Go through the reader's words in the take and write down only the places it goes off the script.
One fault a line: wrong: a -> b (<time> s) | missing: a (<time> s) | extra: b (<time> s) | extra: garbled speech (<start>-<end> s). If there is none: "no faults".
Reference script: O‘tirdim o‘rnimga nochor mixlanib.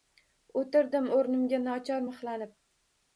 no faults